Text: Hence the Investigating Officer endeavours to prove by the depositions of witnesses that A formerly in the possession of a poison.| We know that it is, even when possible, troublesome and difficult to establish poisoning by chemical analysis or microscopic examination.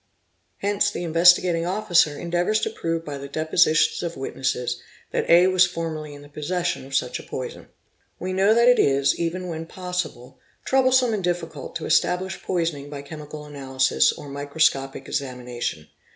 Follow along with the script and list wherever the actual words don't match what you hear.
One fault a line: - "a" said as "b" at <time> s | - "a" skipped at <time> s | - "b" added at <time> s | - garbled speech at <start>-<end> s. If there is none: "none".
- "was" added at 5.5 s
- "such" added at 7.0 s